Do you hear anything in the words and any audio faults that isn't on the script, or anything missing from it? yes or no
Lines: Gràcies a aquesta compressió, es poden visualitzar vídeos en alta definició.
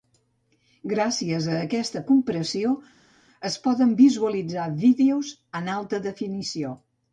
no